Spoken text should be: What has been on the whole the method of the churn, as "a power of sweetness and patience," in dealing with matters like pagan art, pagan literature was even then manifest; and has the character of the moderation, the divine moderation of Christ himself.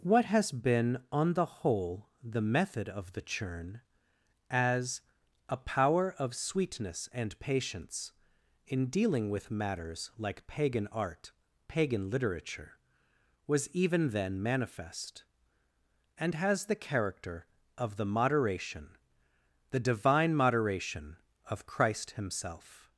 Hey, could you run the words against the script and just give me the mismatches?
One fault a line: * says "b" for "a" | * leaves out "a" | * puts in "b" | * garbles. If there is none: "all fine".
all fine